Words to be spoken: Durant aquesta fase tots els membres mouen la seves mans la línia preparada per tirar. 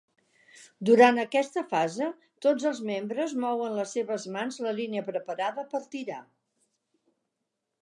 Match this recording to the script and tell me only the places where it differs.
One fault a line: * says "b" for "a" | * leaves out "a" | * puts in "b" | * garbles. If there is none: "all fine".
* says "les" for "la"